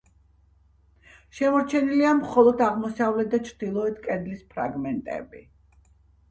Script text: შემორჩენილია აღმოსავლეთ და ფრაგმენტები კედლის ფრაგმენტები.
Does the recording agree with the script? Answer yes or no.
no